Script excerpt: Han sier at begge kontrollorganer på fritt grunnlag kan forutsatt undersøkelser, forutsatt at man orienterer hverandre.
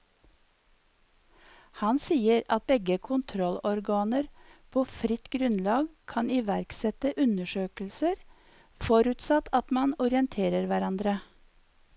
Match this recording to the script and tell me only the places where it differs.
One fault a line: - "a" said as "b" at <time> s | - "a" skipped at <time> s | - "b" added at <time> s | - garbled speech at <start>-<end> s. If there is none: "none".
- "forutsatt" said as "iverksette" at 6.4 s